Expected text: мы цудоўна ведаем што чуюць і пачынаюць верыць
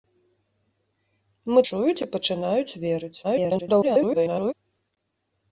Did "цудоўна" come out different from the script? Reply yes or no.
yes